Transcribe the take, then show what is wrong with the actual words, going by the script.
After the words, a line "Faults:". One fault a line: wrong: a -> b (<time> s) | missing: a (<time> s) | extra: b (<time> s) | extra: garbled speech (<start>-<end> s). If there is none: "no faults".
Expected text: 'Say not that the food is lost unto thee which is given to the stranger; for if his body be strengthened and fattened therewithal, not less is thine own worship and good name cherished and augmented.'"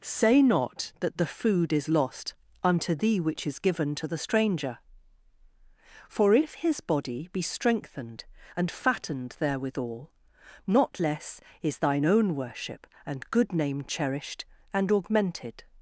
'Say not that the food is lost unto thee which is given to the stranger; for if his body be strengthened and fattened therewithal, not less is thine own worship and good name cherished and augmented.'"
Faults:
no faults